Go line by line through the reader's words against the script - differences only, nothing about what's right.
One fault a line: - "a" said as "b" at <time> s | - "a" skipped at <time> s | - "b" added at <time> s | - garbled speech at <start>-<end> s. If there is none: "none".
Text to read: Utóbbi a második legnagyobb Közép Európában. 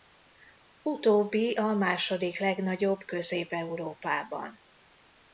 none